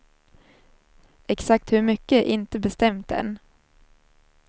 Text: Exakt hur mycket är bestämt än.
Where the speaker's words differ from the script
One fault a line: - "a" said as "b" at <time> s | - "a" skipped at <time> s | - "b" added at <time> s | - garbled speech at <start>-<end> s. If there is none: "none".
- "inte" added at 2.3 s